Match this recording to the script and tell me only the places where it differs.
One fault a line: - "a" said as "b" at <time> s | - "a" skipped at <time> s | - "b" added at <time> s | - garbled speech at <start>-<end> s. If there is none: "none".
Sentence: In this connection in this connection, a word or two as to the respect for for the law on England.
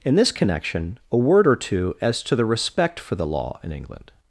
- "in this connection" skipped at 1.0 s
- "for" skipped at 3.1 s
- "on" said as "in" at 3.6 s